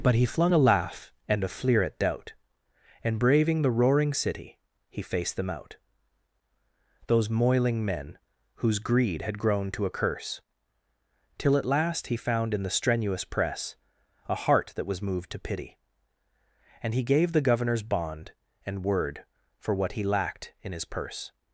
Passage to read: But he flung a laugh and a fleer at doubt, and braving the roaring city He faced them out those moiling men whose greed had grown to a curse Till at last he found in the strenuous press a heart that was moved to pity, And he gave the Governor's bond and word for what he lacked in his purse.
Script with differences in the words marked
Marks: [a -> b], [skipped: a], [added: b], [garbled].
But he flung a laugh and a fleer at doubt, and braving the roaring city He faced them out those moiling men whose greed had grown to a curse Till at last he found in the strenuous press a heart that was moved to pity, And he gave the Governor's bond and word for what he lacked in his purse.